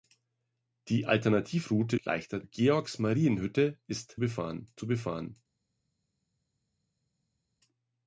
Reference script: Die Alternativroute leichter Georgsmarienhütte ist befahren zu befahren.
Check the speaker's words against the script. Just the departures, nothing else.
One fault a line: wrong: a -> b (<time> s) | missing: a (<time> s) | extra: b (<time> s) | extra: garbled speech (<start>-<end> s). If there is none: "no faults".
no faults